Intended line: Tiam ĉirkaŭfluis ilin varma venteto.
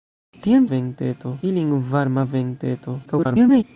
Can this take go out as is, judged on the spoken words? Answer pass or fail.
fail